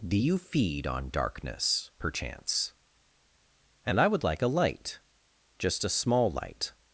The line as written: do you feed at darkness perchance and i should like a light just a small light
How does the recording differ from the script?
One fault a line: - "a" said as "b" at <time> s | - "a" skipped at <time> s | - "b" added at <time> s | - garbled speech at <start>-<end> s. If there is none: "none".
- "at" said as "on" at 0.9 s
- "should" said as "would" at 4.1 s